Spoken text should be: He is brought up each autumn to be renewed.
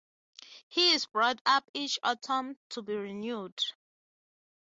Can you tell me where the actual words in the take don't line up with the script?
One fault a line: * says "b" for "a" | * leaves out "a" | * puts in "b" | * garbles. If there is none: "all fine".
all fine